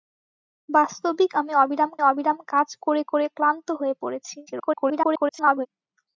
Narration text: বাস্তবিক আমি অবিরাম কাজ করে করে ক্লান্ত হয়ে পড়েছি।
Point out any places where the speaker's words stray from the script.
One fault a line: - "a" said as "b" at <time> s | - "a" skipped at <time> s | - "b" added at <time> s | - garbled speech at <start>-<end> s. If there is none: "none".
- "অবিরাম" added at 2.0 s
- garbled speech at 4.5-5.7 s